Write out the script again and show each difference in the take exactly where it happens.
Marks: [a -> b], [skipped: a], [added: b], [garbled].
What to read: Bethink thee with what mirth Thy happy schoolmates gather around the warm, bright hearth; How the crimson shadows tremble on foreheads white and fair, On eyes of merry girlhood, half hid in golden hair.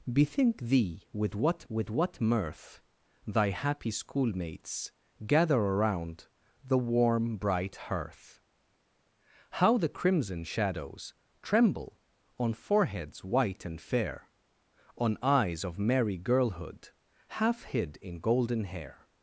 Bethink thee with what [added: with what] mirth Thy happy schoolmates gather around the warm, bright hearth; How the crimson shadows tremble on foreheads white and fair, On eyes of merry girlhood, half hid in golden hair.